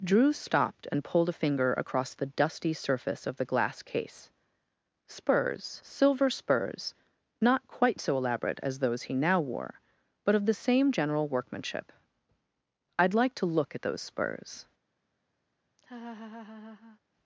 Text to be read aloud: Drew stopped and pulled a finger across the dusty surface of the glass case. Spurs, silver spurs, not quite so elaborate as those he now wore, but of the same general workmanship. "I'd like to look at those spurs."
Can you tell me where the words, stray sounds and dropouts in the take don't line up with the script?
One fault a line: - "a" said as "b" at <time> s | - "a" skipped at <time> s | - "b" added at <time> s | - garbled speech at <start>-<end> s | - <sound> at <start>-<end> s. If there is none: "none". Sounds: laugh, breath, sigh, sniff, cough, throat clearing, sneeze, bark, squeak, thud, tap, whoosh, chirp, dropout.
- laugh at 15.8-17.0 s